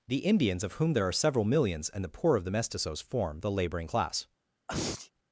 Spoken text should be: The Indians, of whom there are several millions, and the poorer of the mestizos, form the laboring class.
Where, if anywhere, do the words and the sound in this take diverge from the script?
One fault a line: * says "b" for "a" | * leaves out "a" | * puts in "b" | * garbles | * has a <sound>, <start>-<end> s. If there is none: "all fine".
* says "poor" for "poorer"
* has a sneeze, 4.7-5.1 s